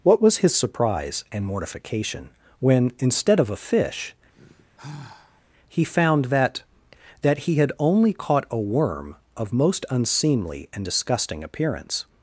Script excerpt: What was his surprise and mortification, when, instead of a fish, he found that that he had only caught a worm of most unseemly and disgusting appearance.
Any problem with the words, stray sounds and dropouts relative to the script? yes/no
yes